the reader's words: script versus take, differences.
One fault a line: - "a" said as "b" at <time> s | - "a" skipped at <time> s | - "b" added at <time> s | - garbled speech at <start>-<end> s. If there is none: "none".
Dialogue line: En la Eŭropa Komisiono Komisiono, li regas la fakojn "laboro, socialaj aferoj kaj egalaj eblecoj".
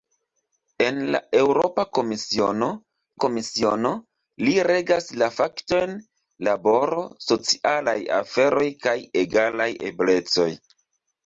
none